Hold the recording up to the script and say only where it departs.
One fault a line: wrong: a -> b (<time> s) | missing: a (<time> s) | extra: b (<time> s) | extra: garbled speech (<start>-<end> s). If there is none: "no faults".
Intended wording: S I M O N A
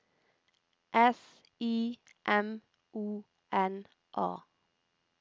no faults